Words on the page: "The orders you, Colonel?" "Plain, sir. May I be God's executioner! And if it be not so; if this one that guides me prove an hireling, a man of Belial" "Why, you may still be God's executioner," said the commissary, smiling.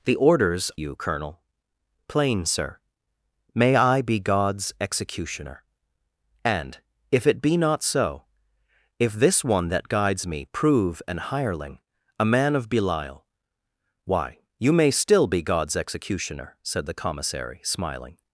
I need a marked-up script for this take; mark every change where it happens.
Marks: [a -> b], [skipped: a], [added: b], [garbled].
"The orders you, Colonel?" "Plain, sir. May I be God's executioner! And if it be not so; if this one that guides me prove an hireling, a man of Belial" "Why, you may still be God's executioner," said the commissary, smiling.